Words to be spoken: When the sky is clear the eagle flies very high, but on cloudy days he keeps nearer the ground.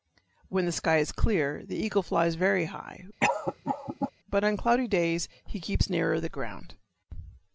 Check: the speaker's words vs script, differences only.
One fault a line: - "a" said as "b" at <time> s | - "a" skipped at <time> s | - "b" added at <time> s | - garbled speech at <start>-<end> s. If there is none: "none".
none